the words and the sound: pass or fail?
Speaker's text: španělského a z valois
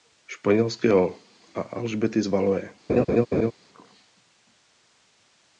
fail